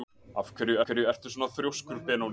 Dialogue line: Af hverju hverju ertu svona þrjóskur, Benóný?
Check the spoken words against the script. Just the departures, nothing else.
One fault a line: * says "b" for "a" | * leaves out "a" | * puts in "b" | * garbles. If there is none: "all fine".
all fine